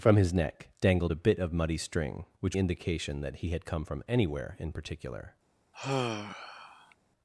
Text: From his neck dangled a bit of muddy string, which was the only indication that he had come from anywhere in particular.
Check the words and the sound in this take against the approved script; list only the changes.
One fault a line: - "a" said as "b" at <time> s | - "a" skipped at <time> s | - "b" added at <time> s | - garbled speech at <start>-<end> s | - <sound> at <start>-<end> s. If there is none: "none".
- "was the only" skipped at 2.6 s
- sigh at 5.7-7.0 s